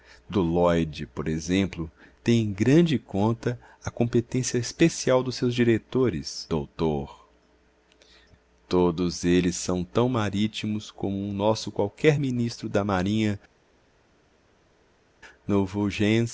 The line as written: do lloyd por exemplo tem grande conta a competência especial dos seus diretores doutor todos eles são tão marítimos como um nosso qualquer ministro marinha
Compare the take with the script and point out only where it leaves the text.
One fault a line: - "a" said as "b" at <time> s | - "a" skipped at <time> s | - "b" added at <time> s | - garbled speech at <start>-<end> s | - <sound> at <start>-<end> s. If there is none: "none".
- "em" added at 2.4 s
- "da" added at 12.7 s